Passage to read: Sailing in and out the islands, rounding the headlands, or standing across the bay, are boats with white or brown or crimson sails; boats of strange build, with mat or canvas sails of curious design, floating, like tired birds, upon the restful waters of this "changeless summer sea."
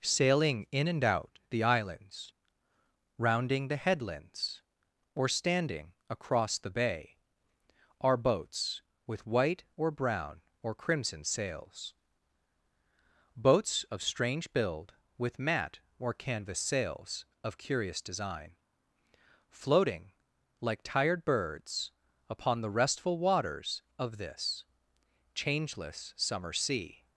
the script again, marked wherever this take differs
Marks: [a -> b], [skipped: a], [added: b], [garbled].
Sailing in and out the islands, rounding the headlands, or standing across the bay, are boats with white or brown or crimson sails; boats of strange build, with mat or canvas sails of curious design, floating, like tired birds, upon the restful waters of this "changeless summer sea."